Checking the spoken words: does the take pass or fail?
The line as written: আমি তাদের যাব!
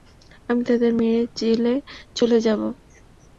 fail